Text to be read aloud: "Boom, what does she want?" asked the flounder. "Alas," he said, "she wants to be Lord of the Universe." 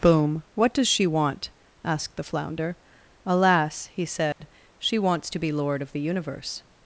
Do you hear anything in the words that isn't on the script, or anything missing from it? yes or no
no